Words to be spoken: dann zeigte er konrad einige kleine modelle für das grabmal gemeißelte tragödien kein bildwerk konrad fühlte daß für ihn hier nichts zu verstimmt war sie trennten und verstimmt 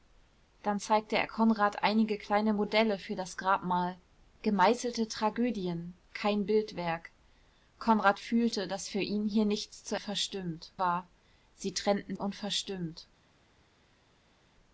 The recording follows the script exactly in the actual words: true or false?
true